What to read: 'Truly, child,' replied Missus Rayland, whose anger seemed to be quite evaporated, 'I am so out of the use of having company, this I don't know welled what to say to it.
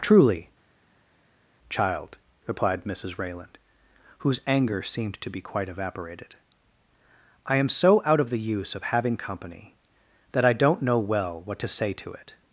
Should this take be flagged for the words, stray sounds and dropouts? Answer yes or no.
yes